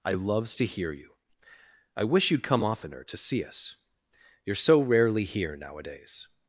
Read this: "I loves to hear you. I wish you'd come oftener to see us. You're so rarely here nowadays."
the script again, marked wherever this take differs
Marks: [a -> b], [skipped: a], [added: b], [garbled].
"I loves to hear you. I wish you'd come oftener to see us. You're so rarely here nowadays."